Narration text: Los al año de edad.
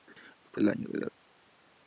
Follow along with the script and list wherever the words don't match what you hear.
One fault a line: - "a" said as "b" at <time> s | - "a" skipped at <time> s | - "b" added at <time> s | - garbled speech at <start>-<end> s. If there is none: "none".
none